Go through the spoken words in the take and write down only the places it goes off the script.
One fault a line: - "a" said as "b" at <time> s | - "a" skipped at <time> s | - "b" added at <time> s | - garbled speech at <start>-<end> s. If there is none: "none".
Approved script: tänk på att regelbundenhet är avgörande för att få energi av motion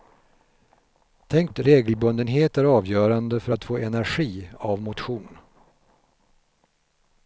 - "på" skipped at 1.5 s